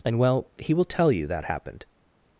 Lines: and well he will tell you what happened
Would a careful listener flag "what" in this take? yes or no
yes